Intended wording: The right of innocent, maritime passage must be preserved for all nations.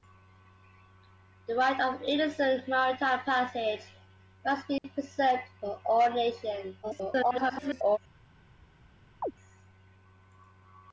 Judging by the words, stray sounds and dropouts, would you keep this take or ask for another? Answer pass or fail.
fail